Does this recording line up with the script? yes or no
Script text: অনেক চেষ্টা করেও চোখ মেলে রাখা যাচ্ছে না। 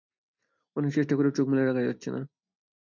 yes